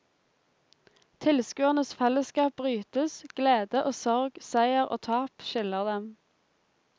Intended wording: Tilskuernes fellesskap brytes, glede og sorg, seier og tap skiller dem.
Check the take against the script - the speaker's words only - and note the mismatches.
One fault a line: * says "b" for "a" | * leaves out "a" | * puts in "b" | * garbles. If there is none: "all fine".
all fine